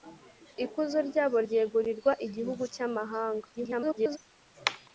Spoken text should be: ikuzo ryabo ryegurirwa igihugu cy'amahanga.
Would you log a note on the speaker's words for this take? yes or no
yes